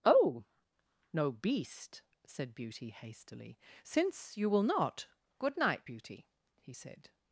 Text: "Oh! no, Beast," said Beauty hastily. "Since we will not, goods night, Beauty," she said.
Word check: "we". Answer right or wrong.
wrong